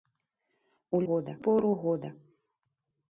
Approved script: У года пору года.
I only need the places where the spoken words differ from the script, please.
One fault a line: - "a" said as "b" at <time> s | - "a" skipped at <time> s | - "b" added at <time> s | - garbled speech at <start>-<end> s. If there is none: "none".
none